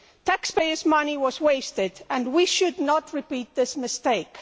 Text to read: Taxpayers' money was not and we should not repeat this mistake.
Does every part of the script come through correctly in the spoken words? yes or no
no